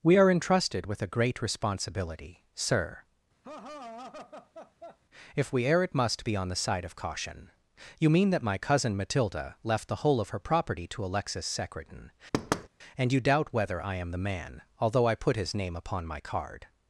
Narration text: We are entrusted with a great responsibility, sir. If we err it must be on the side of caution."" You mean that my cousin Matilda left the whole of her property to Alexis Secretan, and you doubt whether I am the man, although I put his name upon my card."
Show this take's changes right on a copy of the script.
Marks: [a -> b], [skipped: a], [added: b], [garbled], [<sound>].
We are entrusted with a great responsibility, sir. [laugh] If we err it must be on the side of caution."" You mean that my cousin Matilda left the whole of her property to Alexis Secretan, [thud] and you doubt whether I am the man, although I put his name upon my card."